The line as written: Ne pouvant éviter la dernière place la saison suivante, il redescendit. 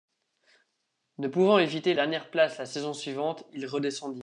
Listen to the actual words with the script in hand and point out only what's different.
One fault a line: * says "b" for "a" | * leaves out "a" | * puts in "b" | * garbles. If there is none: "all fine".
* leaves out "la"